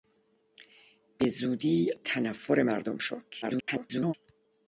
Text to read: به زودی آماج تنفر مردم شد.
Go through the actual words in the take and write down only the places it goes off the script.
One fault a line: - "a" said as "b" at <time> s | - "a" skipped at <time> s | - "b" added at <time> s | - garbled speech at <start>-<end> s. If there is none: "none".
- "آماج" skipped at 1.9 s
- garbled speech at 3.4-4.1 s